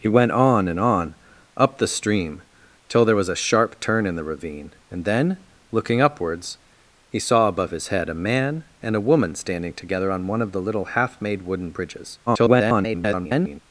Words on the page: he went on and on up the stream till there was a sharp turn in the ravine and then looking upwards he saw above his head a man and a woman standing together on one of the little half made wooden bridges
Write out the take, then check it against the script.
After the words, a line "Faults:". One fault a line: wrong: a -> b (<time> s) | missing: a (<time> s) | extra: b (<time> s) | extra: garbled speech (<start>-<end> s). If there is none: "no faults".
he went on and on up the stream till there was a sharp turn in the ravine and then looking upwards he saw above his head a man and a woman standing together on one of the little half made wooden bridges [garbled]
Faults:
extra: garbled speech (12.3-13.6 s)